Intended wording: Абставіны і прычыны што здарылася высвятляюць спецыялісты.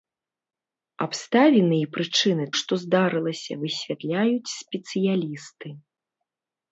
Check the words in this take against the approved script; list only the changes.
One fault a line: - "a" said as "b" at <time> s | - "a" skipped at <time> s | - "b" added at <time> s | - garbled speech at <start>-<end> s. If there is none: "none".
none